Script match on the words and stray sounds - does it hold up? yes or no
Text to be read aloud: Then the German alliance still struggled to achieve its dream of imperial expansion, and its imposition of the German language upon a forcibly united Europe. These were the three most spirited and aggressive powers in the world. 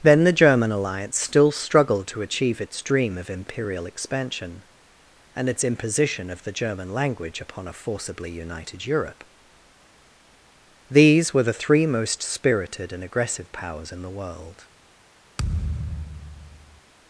no